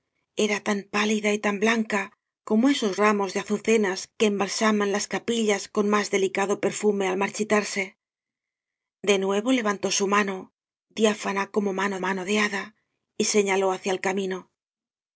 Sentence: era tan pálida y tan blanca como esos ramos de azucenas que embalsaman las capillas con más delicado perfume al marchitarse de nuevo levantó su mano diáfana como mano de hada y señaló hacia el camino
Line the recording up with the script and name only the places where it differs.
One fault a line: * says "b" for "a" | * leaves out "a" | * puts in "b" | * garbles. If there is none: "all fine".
* puts in "mano"